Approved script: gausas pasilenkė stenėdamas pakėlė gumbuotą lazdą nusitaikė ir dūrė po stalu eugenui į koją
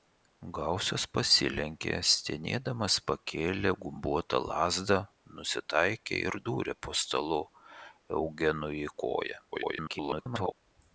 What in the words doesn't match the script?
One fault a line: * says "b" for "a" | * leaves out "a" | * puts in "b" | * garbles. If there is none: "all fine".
* garbles